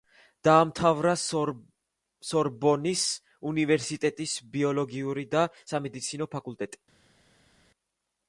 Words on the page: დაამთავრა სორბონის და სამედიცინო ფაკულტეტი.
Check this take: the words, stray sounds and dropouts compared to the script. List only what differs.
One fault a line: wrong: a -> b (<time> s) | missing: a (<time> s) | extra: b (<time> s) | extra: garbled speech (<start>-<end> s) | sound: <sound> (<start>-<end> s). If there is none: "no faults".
extra: უნივერსიტეტის ბიოლოგიური (3.5 s)